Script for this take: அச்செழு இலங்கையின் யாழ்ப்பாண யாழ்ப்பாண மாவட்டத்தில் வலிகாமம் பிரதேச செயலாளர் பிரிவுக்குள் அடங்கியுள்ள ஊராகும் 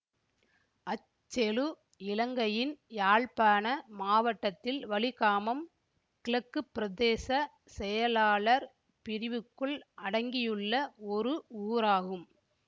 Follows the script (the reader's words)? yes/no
no